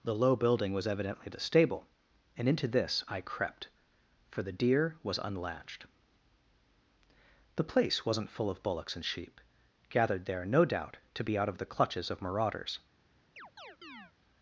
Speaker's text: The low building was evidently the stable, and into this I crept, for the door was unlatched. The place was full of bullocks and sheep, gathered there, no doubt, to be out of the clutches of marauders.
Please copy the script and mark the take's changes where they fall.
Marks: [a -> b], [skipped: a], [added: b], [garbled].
The low building was evidently the stable, and into this I crept, for the [door -> deer] was unlatched. The place [was -> wasn't] full of bullocks and sheep, gathered there, no doubt, to be out of the clutches of marauders.